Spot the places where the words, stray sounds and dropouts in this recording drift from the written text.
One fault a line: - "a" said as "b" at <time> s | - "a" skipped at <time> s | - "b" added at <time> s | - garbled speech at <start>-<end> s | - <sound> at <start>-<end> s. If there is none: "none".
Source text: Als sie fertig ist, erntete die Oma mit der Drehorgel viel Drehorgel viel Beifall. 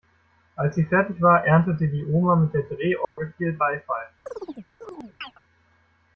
- "ist" said as "war" at 1.2 s
- dropout at 3.0-3.2 s
- "Drehorgel viel" skipped at 3.5 s
- chirp at 4.3-5.4 s